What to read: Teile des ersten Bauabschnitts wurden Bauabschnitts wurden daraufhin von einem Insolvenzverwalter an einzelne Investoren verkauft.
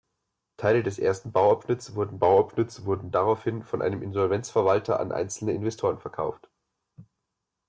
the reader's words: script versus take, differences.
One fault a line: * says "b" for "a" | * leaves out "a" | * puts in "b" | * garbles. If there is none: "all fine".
all fine